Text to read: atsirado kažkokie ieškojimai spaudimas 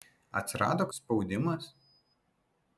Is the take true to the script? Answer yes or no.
no